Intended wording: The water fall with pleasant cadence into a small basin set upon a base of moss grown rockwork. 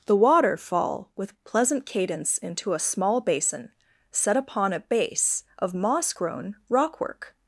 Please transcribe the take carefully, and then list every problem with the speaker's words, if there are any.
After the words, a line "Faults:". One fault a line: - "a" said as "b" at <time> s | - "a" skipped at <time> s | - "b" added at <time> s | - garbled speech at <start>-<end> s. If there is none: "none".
The water fall with pleasant cadence into a small basin set upon a base of moss grown rockwork.
Faults:
none